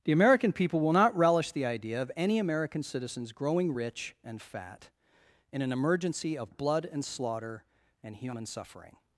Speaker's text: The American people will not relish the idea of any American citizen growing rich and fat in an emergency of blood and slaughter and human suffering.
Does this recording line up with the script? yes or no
no